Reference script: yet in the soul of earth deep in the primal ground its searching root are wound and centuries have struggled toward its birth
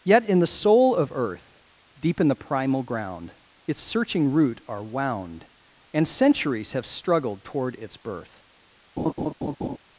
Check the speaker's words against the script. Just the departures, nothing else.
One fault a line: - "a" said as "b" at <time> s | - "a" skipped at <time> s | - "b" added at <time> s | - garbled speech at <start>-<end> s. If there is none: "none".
none